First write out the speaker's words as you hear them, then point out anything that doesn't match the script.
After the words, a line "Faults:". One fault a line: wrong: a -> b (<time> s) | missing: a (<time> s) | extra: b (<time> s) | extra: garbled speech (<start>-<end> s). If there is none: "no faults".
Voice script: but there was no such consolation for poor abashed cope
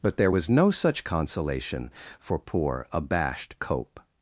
but there was no such consolation for poor abashed cope
Faults:
no faults